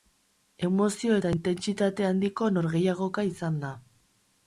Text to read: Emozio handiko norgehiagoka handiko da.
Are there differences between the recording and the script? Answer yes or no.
yes